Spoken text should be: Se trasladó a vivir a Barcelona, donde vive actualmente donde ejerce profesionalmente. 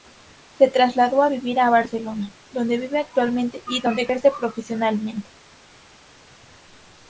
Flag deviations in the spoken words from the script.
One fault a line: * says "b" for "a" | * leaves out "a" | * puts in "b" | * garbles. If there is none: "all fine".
* puts in "y"